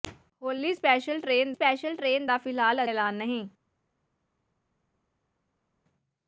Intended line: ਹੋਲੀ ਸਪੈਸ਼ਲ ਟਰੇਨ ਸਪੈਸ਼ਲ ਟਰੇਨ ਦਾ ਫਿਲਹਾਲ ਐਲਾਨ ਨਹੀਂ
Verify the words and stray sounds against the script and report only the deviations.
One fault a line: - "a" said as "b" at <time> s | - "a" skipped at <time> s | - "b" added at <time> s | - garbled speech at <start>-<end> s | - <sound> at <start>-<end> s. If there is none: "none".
none